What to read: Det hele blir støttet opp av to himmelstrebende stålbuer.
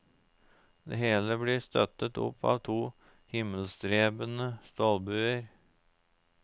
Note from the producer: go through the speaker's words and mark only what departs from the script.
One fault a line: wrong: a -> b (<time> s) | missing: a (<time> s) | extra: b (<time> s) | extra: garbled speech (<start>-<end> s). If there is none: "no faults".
no faults